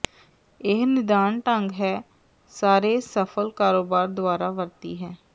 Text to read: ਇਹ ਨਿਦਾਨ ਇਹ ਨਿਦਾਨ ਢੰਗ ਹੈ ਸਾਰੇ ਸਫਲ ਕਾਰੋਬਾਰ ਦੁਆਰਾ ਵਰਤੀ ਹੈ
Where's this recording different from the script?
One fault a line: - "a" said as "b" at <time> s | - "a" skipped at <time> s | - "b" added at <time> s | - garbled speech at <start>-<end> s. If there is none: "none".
- "ਇਹ ਨਿਦਾਨ" skipped at 1.4 s